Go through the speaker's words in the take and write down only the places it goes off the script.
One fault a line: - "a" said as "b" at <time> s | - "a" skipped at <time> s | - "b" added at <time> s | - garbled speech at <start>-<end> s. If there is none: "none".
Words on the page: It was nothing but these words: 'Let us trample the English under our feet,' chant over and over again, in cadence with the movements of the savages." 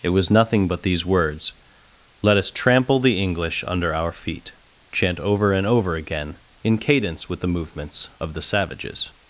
none